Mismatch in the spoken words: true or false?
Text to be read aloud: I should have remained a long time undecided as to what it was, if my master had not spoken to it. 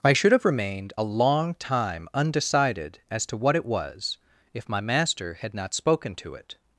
false